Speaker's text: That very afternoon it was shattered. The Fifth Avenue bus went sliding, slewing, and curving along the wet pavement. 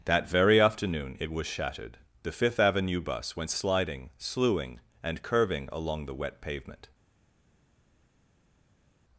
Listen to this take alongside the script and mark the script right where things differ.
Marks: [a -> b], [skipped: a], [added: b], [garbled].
That very afternoon it was shattered. The Fifth Avenue bus went sliding, slewing, and curving along the wet pavement.